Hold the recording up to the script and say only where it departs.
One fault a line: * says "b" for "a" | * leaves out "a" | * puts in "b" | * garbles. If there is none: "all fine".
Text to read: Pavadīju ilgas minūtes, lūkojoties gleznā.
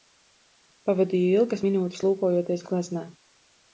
all fine